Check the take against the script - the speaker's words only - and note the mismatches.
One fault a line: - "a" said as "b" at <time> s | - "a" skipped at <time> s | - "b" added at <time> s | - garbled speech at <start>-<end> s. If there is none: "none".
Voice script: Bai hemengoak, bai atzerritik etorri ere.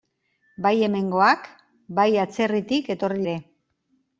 none